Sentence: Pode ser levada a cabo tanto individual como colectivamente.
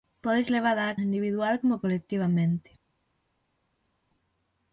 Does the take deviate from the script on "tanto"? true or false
true